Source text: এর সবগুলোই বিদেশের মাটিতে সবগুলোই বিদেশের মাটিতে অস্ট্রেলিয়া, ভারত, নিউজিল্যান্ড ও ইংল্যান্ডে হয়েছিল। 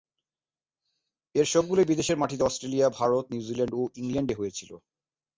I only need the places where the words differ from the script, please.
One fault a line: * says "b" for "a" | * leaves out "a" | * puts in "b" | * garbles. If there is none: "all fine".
* leaves out "সবগুলোই বিদেশের মাটিতে"